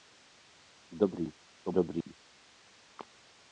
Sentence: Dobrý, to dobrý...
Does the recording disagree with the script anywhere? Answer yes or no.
no